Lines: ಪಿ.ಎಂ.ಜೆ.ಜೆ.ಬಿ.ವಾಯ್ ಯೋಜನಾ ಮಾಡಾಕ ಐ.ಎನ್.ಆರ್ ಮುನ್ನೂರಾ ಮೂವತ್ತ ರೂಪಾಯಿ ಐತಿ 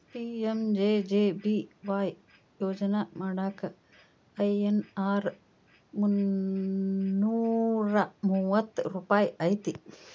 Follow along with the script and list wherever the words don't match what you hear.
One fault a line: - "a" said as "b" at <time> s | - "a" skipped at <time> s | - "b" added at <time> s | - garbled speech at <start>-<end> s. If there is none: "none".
none